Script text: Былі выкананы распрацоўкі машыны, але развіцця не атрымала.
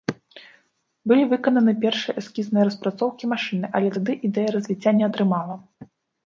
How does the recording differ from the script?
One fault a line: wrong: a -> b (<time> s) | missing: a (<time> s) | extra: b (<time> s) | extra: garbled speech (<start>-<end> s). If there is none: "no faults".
extra: першыя эскізныя (1.8 s)
extra: тады ідэя (4.0 s)